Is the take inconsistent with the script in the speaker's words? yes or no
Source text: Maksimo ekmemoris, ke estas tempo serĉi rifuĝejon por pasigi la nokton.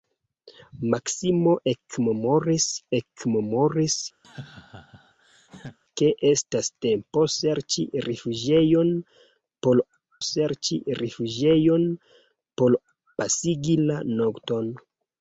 yes